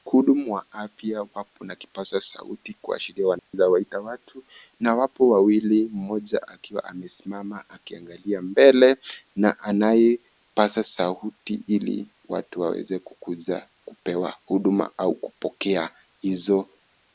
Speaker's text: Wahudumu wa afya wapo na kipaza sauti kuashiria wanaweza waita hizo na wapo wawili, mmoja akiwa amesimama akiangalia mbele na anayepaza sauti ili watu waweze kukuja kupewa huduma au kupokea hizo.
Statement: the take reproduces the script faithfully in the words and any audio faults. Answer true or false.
false